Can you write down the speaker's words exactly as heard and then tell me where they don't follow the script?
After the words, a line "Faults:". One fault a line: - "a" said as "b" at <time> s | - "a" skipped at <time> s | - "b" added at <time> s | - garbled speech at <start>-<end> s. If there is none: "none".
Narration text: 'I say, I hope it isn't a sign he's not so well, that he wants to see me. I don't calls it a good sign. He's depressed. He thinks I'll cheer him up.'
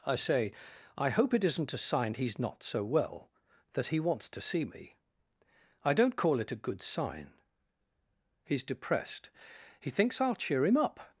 'I say, I hope it isn't a sign he's not so well, that he wants to see me. I don't call it a good sign. He's depressed. He thinks I'll cheer him up.'
Faults:
- "calls" said as "call" at 6.2 s